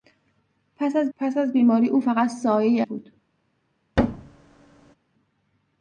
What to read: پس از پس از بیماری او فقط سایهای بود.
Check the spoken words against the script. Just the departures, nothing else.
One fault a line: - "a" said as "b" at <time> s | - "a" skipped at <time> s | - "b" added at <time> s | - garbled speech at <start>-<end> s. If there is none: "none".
none